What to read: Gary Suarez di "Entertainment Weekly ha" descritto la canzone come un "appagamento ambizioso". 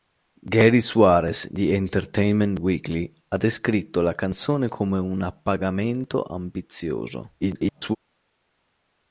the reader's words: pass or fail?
fail